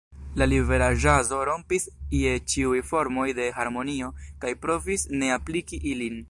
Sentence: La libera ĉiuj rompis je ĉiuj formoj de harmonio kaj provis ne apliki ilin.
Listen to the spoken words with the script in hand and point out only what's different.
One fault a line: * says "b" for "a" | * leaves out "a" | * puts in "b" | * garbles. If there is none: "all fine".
* says "ĵazo" for "ĉiuj"